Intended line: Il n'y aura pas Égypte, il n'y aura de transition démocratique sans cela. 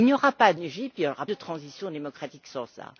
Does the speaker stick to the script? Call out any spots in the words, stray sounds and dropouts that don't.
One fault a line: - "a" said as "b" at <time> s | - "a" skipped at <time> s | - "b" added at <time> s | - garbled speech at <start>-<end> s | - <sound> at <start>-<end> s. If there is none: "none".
none